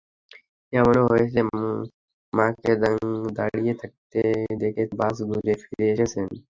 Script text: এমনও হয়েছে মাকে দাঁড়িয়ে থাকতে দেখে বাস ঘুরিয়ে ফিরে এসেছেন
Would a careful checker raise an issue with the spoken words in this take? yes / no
no